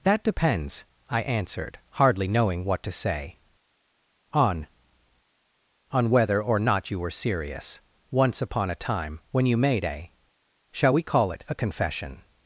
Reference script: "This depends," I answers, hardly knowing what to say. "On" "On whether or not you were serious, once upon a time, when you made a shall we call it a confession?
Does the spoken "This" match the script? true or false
false